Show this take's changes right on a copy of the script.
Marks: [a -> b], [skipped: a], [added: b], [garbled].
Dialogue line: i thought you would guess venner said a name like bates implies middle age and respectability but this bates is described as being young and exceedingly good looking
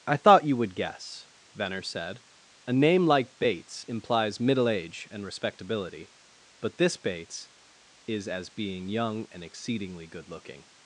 i thought you would guess venner said a name like bates implies middle age and respectability but this bates is [skipped: described] as being young and exceedingly good looking